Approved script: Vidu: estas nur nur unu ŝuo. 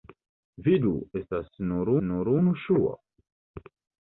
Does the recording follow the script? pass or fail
pass